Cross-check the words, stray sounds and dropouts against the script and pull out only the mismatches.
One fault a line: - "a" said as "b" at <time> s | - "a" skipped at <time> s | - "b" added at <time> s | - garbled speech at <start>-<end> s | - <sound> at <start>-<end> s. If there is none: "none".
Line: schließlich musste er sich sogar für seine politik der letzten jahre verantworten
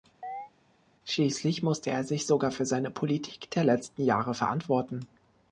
- chirp at 0.2-0.5 s